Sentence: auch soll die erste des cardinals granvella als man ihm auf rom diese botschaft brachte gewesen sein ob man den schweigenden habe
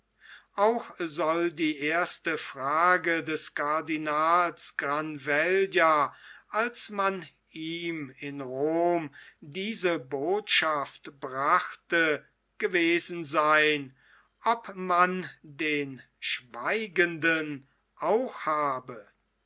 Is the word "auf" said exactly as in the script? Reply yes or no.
no